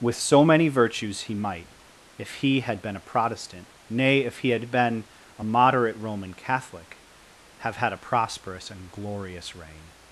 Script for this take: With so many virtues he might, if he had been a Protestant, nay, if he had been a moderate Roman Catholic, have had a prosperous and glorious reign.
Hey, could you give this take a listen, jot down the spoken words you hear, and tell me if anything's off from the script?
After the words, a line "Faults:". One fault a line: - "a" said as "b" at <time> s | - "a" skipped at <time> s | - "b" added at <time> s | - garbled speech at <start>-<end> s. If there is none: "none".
With so many virtues he might, if he had been a Protestant, nay, if he had been a moderate Roman Catholic, have had a prosperous and glorious reign.
Faults:
none